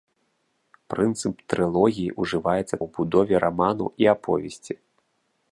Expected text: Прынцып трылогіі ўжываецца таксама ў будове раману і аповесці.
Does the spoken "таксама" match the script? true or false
false